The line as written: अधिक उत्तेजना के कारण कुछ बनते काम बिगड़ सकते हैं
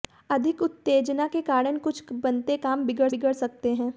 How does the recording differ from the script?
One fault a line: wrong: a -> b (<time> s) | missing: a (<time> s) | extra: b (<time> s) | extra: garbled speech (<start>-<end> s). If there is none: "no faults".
extra: बिगड़ (3.1 s)